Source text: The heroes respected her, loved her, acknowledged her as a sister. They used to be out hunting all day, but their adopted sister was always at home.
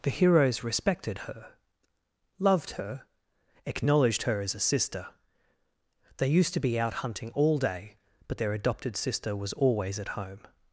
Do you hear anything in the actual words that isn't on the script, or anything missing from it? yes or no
no